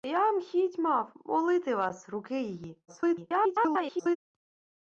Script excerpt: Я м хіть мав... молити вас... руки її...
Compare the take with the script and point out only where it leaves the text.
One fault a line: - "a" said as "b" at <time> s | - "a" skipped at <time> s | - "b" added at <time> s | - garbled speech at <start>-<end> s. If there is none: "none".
- garbled speech at 2.9-4.2 s